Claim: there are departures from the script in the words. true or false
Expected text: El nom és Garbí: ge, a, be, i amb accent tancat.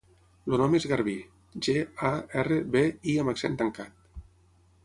true